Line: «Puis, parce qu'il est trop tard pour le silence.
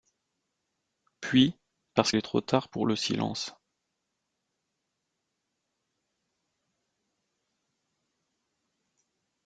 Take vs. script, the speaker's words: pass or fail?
fail